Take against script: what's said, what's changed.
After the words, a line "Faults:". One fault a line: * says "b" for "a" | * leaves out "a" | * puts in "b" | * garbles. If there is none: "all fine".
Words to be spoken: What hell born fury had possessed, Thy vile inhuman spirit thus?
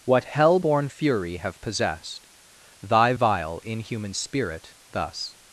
What hell born fury have possessed, Thy vile inhuman spirit thus?
Faults:
* says "have" for "had"